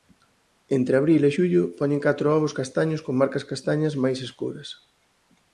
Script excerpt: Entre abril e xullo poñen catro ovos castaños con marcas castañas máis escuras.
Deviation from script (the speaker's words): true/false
false